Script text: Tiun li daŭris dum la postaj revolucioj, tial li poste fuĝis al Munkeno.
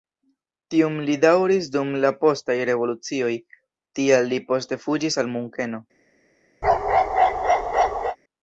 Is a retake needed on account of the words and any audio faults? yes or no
yes